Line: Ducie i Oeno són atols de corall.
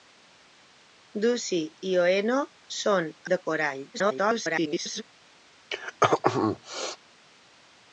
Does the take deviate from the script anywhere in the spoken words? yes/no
yes